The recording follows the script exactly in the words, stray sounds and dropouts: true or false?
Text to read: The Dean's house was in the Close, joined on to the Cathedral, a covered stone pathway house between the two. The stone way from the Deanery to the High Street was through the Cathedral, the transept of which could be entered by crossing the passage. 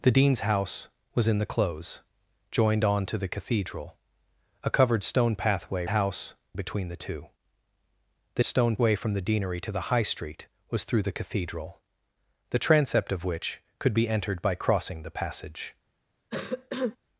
false